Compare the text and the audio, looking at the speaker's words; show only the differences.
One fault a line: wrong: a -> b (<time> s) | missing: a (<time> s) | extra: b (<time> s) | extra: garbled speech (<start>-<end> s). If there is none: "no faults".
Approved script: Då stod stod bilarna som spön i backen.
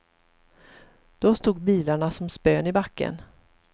missing: stod (1.6 s)